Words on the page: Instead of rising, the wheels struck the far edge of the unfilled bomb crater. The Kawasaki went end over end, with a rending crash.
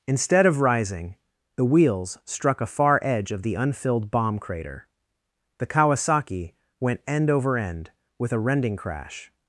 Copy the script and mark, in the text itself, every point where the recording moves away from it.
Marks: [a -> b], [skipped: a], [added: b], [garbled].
Instead of rising, the wheels struck [the -> a] far edge of the unfilled bomb crater. The Kawasaki went end over end, with a rending crash.